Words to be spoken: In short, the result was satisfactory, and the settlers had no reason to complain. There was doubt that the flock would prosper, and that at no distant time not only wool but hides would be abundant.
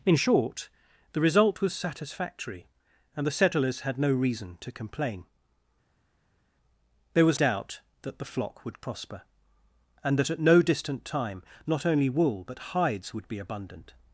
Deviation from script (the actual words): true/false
false